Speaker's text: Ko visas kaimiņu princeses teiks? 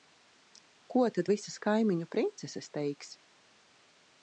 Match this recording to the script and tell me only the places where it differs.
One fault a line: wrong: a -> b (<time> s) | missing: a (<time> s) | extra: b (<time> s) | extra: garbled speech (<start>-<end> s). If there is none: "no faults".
extra: tad (1.2 s)